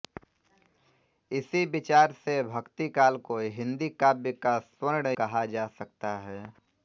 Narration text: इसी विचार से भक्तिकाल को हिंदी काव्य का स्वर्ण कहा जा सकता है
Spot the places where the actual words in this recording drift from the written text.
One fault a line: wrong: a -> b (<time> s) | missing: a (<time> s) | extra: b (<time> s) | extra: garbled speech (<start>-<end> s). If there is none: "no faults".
no faults